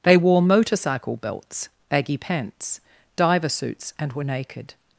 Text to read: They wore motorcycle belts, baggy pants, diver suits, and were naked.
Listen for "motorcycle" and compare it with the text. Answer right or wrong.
right